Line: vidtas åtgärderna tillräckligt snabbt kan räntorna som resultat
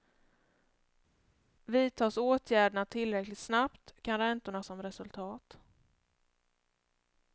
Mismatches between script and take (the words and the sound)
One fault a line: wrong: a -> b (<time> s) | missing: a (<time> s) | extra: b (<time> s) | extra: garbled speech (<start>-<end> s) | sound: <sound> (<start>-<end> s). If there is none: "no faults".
no faults